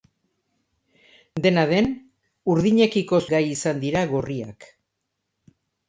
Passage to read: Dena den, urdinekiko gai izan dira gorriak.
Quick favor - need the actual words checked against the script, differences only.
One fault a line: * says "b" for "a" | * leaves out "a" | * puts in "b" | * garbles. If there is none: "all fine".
all fine